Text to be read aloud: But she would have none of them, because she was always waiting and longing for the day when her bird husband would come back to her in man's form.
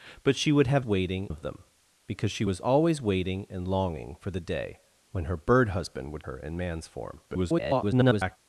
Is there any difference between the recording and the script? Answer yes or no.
yes